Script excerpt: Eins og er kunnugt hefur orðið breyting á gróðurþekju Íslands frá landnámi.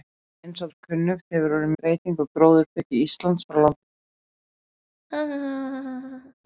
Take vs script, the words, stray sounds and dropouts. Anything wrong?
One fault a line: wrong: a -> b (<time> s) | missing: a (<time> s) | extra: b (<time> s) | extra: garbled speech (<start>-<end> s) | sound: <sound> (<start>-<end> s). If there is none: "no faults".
sound: laugh (5.1-6.3 s)